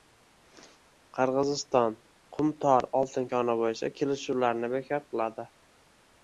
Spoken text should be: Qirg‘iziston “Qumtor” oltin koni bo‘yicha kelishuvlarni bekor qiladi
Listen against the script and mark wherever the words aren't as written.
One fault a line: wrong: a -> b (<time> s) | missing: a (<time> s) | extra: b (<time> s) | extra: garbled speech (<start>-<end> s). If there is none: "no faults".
no faults